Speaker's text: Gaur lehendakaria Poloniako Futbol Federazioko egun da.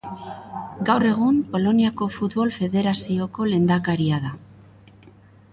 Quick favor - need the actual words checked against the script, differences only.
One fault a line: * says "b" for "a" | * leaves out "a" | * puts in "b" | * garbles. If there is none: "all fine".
* says "egun" for "lehendakaria"
* says "lehendakaria" for "egun"